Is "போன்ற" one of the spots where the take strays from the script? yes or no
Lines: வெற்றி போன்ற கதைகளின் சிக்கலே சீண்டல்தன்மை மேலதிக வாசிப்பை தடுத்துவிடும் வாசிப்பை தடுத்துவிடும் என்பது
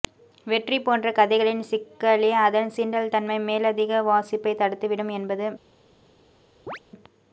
no